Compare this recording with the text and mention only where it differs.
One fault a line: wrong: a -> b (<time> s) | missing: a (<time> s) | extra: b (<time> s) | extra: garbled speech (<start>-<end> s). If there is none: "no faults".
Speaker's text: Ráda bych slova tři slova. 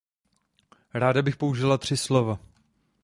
wrong: slova -> použila (1.4 s)